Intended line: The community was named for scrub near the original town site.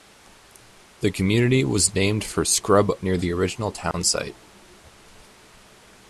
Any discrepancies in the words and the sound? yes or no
yes